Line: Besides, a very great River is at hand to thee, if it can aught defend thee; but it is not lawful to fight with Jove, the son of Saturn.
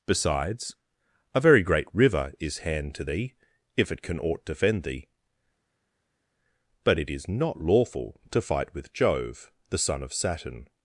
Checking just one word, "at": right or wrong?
wrong